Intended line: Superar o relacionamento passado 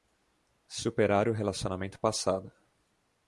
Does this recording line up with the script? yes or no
yes